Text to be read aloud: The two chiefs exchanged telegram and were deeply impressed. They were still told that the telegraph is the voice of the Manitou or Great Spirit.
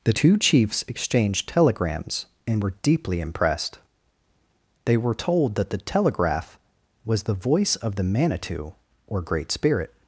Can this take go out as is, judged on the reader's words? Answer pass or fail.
fail